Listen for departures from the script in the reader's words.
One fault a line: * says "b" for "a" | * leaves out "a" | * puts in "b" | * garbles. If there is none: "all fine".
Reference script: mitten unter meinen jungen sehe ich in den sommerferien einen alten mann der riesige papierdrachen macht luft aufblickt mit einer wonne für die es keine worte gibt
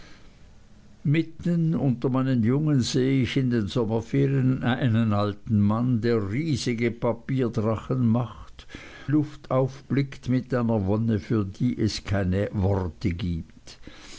all fine